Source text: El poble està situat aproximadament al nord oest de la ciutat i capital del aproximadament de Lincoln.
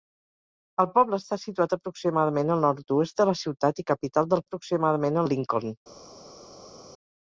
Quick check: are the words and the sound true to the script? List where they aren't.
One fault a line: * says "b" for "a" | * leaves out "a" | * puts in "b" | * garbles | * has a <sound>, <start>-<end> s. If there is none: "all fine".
all fine